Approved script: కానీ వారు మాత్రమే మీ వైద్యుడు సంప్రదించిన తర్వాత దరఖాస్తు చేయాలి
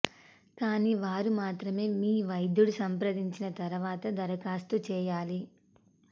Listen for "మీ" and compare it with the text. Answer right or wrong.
right